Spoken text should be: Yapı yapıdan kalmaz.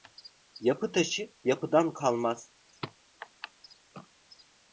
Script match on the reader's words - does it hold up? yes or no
no